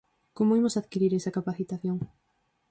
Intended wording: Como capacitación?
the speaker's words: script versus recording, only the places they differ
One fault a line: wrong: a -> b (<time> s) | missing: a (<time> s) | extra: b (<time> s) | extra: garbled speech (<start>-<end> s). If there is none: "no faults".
extra: imos adquirir esa (0.6 s)